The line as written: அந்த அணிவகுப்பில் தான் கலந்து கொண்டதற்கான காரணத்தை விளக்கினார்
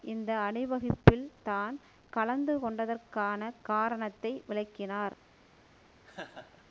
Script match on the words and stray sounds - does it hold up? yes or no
no